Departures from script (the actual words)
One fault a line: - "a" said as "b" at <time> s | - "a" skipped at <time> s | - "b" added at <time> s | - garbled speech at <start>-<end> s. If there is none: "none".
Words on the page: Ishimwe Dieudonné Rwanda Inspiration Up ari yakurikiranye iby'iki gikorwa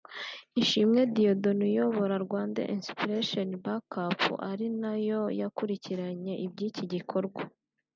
- "uyobora" added at 1.7 s
- "Back" added at 3.6 s
- "nayo" added at 4.8 s